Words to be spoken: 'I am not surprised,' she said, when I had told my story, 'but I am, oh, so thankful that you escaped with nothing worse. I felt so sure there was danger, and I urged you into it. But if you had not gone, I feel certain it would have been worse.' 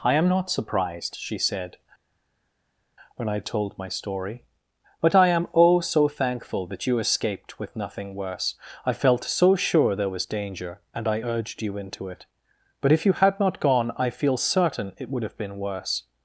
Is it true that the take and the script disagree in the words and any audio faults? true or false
true